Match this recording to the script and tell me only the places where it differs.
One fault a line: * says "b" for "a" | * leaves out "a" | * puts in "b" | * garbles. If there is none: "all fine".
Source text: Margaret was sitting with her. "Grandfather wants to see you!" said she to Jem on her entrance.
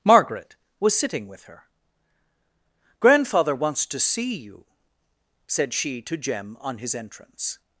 * says "his" for "her"